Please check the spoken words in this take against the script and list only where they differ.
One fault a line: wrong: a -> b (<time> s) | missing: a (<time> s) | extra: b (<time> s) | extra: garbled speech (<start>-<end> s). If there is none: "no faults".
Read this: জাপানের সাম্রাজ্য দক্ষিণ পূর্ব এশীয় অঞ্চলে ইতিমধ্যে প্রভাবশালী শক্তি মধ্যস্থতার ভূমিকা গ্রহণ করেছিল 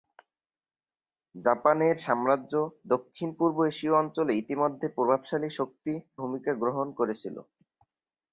missing: মধ্যস্থতার (5.9 s)